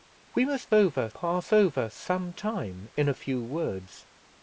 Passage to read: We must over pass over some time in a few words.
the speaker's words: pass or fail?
pass